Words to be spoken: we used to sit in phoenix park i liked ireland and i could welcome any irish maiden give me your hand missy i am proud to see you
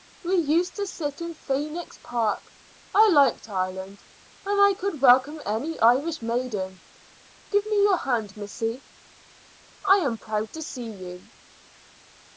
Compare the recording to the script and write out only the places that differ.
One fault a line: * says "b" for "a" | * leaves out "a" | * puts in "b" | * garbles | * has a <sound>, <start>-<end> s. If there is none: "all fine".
all fine